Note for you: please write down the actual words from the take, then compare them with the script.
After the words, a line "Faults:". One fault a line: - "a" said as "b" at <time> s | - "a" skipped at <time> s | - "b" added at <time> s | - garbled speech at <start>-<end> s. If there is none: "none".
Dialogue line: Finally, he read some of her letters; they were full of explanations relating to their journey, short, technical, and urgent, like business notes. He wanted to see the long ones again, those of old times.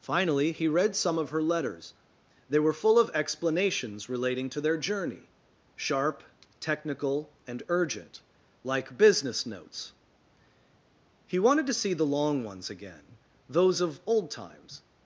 Finally, he read some of her letters; they were full of explanations relating to their journey, sharp, technical, and urgent, like business notes. He wanted to see the long ones again, those of old times.
Faults:
- "short" said as "sharp" at 5.8 s